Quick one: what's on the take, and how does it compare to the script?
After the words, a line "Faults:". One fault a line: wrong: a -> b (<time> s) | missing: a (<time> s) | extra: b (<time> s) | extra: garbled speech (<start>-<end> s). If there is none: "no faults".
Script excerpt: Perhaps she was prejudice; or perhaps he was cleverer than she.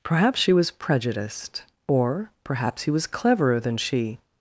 Perhaps she was prejudiced; or perhaps he was cleverer than she.
Faults:
wrong: prejudice -> prejudiced (0.7 s)